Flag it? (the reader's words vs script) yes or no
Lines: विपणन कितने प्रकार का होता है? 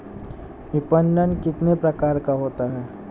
no